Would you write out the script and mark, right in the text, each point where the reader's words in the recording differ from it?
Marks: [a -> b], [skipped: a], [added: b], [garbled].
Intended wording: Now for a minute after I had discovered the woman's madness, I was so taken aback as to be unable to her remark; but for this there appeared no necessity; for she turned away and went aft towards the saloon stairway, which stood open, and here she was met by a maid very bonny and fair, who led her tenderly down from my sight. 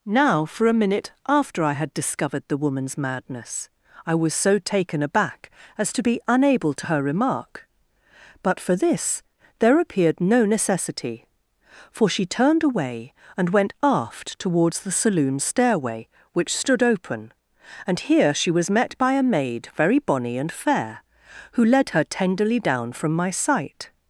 Now for a minute after I had discovered the woman's madness, I was so taken aback as to be unable to her remark; but for this there appeared no necessity; for she turned away and went aft towards the saloon stairway, which stood open, and here she was met by a maid very bonny and fair, who led her tenderly down from my sight.